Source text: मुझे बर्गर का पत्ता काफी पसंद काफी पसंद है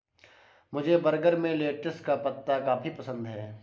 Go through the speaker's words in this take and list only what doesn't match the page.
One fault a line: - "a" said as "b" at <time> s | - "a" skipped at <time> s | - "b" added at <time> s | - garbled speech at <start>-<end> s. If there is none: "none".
- "में लेटिस" added at 1.4 s
- "काफी पसंद" skipped at 3.3 s